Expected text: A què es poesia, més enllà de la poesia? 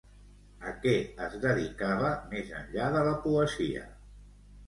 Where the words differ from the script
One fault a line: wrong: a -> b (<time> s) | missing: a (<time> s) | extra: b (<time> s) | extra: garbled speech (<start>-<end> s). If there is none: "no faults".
wrong: poesia -> dedicava (1.4 s)